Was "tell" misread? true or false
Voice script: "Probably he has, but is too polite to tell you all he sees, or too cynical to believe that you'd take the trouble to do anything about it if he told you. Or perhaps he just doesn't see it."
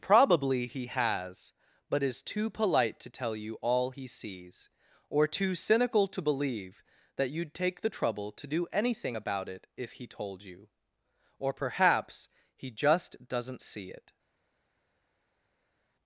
false